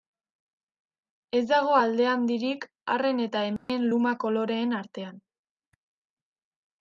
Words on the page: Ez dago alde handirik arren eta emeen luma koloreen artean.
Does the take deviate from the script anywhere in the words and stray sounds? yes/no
yes